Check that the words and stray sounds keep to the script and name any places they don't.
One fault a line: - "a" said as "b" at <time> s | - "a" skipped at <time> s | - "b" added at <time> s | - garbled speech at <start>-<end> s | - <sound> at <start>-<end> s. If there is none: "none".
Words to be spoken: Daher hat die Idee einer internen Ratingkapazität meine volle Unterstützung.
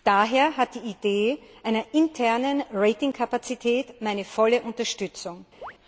- chirp at 5.6-5.7 s